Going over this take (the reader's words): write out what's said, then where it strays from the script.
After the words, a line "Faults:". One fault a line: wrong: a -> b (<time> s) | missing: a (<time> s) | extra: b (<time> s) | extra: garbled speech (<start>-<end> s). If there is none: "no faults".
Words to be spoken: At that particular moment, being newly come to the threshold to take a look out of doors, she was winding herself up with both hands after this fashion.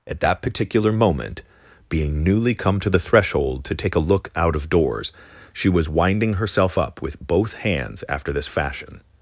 At that particular moment, being newly come to the threshold to take a look out of doors, she was winding herself up with both hands after this fashion.
Faults:
no faults